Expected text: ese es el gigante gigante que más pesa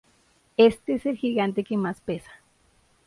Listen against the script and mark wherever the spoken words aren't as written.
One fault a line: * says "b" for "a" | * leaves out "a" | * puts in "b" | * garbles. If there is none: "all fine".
* says "este" for "ese"
* leaves out "gigante"